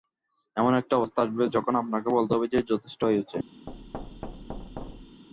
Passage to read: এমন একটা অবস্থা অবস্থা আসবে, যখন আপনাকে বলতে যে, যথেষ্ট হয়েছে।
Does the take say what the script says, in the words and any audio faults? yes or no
no